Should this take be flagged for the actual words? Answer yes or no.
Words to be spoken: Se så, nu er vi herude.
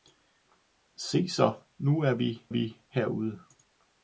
yes